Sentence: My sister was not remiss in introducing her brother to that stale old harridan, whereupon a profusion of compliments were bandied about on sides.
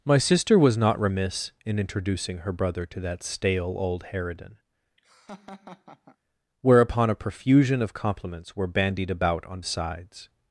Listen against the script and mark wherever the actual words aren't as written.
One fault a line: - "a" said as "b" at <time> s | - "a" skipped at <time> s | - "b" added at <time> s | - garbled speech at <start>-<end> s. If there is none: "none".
none